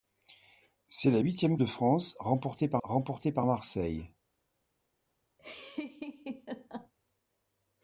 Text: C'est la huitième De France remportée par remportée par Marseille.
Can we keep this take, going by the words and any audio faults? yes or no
no